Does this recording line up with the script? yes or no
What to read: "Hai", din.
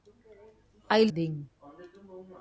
yes